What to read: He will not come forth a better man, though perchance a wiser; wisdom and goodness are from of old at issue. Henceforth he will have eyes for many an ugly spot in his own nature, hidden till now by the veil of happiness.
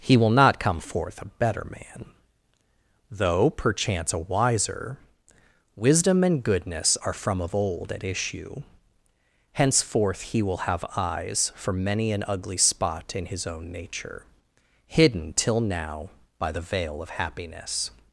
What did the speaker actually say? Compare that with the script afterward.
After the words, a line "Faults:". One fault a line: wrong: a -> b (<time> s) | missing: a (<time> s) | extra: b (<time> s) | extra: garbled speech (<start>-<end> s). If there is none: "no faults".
He will not come forth a better man, though perchance a wiser; wisdom and goodness are from of old at issue. Henceforth he will have eyes for many an ugly spot in his own nature, hidden till now by the veil of happiness.
Faults:
no faults